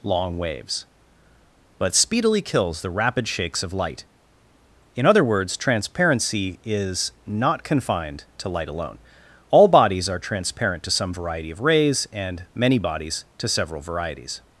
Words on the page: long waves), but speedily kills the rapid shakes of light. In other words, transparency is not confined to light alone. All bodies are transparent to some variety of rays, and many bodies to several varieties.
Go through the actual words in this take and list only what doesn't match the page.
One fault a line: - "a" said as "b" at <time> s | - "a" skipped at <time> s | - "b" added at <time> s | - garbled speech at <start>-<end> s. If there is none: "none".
none